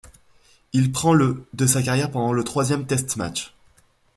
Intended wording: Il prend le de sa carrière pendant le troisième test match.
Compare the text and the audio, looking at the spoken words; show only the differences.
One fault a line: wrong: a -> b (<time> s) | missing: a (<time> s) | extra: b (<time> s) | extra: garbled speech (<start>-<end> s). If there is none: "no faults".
no faults